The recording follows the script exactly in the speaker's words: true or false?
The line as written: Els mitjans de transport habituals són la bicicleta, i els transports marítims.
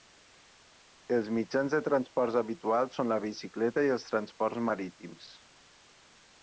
true